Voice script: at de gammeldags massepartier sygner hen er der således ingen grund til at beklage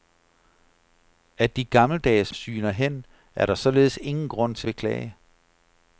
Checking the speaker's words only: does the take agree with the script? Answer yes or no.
no